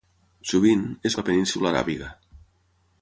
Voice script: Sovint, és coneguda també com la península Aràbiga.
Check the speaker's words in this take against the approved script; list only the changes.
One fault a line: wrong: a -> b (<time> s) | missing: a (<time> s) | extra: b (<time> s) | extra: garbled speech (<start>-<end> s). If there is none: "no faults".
missing: coneguda també com (1.2 s)